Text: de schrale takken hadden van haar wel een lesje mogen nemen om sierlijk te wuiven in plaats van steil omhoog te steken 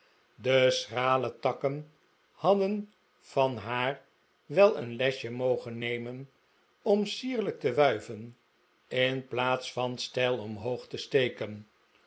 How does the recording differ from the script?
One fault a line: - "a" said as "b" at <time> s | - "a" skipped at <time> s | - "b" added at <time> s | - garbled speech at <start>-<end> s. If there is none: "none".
none